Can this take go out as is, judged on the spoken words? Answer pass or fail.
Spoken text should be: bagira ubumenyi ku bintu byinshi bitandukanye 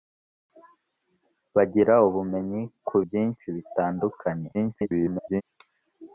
fail